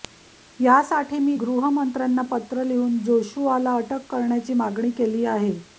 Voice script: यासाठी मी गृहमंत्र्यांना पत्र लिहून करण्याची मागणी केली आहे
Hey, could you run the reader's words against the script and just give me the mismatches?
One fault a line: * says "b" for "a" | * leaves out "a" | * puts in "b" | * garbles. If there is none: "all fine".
* puts in "जोशुआला अटक"